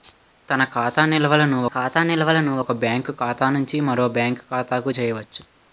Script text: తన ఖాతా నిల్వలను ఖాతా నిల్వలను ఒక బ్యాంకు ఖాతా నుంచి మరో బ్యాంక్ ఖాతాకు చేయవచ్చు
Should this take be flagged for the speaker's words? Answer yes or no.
no